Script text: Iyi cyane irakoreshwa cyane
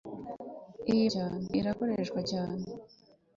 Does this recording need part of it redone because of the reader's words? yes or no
no